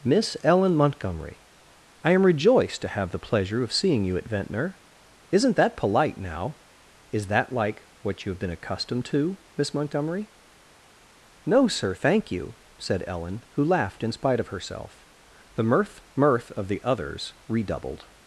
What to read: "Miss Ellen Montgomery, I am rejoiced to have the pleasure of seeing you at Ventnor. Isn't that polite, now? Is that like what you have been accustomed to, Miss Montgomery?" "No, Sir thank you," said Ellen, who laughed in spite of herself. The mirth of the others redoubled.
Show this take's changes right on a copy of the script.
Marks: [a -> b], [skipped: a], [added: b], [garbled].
"Miss Ellen Montgomery, I am rejoiced to have the pleasure of seeing you at Ventnor. Isn't that polite, now? Is that like what you have been accustomed to, Miss Montgomery?" "No, Sir thank you," said Ellen, who laughed in spite of herself. The mirth [added: mirth] of the others redoubled.